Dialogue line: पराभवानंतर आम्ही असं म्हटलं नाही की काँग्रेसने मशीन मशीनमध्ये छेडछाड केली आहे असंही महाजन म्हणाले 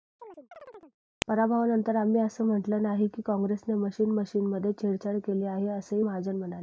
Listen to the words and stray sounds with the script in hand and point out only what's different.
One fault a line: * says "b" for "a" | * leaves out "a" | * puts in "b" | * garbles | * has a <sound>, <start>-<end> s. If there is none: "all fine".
* has a chirp, 0.2-1.0 s